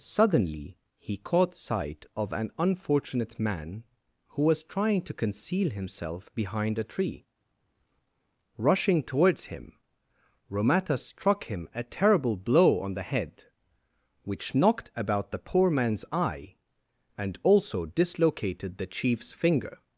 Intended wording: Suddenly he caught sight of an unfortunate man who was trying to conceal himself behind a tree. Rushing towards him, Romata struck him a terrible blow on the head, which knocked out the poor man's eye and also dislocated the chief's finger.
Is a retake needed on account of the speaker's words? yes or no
yes